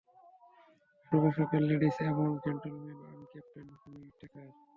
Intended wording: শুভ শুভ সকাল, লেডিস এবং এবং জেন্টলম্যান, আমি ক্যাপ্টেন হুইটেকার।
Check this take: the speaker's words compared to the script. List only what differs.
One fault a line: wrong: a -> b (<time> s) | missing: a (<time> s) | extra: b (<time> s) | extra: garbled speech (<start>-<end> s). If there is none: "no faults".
missing: শুভ (1.2 s)
missing: এবং (2.3 s)